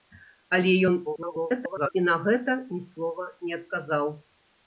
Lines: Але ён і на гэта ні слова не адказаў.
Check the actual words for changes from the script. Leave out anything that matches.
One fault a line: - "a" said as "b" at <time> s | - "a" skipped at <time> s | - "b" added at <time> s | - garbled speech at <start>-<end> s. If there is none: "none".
- garbled speech at 1.1-1.9 s